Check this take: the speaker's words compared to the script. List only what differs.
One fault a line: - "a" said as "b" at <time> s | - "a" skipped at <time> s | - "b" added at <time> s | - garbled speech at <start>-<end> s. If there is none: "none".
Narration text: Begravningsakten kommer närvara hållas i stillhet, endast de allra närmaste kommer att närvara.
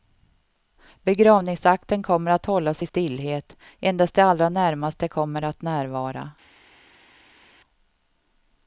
- "närvara" said as "att" at 2.3 s